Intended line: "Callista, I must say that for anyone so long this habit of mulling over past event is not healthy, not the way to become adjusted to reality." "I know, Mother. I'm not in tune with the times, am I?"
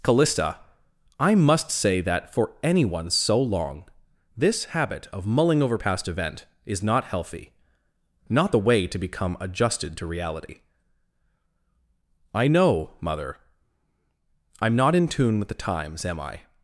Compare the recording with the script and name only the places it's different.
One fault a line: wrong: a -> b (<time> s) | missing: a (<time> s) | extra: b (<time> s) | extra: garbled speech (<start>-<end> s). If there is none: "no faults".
no faults